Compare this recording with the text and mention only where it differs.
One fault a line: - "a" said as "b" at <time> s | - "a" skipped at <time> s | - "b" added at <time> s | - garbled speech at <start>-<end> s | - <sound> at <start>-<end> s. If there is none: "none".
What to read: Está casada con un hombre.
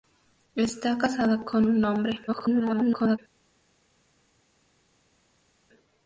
- garbled speech at 2.3-3.2 s